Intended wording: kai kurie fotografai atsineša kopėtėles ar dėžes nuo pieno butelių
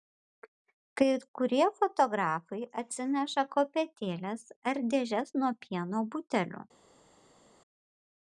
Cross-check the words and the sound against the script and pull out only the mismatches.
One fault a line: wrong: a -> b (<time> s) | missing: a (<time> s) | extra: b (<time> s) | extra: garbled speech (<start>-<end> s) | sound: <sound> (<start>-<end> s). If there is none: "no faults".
no faults